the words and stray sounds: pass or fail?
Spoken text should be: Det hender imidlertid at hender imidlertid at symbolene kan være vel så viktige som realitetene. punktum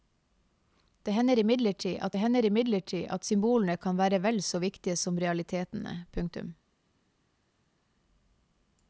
pass